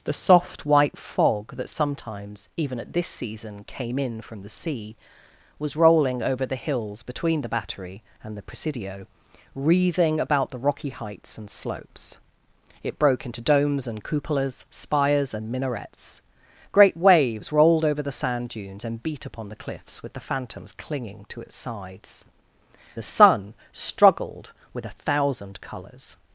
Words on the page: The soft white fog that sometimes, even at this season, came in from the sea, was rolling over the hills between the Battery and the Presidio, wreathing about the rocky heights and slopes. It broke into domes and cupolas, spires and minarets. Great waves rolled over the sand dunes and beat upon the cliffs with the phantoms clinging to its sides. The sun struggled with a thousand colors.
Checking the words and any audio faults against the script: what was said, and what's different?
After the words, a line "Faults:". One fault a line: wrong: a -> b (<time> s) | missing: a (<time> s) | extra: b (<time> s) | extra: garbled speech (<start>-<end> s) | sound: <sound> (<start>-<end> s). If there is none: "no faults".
The soft white fog that sometimes, even at this season, came in from the sea, was rolling over the hills between the Battery and the Presidio, wreathing about the rocky heights and slopes. It broke into domes and cupolas, spires and minarets. Great waves rolled over the sand dunes and beat upon the cliffs with the phantoms clinging to its sides. The sun struggled with a thousand colors.
Faults:
no faults